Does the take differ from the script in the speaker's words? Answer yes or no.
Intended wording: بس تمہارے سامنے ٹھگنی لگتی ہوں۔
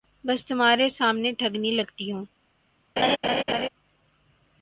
no